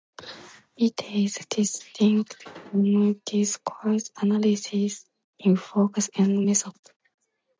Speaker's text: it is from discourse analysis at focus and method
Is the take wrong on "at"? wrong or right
wrong